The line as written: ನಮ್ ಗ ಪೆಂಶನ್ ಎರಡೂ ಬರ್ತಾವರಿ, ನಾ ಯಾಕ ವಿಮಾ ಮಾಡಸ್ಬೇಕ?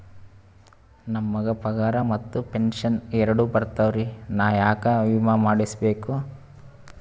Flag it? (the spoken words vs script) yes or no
yes